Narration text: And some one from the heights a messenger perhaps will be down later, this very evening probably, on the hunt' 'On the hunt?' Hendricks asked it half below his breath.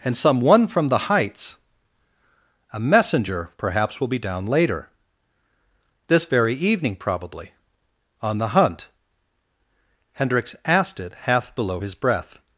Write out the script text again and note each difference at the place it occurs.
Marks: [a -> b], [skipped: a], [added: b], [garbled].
And some one from the heights a messenger perhaps will be down later, this very evening probably, on the hunt' [skipped: 'On the hunt?'] Hendricks asked it half below his breath.